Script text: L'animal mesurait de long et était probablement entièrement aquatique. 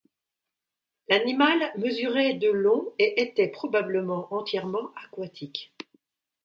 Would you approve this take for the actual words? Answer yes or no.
yes